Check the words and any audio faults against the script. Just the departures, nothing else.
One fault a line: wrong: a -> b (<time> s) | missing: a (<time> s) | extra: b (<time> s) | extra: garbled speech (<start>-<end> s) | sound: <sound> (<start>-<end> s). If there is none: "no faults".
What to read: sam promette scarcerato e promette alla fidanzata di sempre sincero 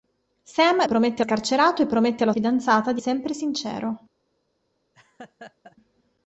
sound: laugh (4.9-5.8 s)